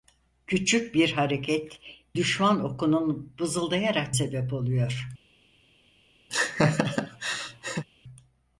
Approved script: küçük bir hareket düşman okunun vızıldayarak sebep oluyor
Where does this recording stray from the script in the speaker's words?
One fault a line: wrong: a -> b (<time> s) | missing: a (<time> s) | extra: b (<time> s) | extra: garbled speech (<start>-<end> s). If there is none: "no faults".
no faults